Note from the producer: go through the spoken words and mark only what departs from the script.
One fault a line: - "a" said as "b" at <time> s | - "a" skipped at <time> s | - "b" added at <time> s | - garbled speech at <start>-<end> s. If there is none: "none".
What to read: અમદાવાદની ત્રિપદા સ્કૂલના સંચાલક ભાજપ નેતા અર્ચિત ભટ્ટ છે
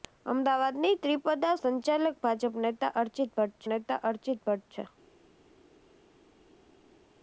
- "સ્કૂલના" skipped at 1.5 s
- "નેતા અર્ચિત ભટ્ટ" added at 3.7 s